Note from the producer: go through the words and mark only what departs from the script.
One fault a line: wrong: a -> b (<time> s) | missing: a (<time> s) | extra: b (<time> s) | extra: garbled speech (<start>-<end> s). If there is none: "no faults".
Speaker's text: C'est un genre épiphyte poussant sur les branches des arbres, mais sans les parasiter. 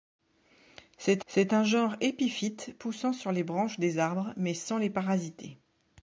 extra: c'est (1.3 s)